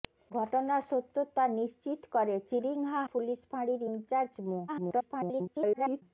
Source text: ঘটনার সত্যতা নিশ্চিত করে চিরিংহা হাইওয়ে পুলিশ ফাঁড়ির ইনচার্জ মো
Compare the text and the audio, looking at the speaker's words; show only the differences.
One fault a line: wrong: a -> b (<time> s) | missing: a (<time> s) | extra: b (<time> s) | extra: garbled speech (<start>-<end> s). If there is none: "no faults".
missing: হাইওয়ে (3.0 s)
extra: garbled speech (4.7-6.0 s)